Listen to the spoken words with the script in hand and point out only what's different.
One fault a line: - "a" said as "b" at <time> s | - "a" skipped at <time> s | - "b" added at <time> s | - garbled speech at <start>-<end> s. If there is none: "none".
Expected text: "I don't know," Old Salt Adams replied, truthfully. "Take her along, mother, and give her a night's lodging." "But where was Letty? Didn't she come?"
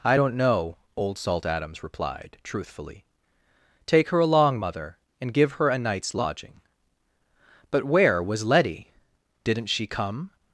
none